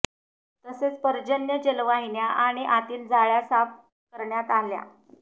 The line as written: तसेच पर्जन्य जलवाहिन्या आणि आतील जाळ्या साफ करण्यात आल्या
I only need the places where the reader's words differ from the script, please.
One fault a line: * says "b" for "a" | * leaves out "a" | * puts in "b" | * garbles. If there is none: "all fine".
all fine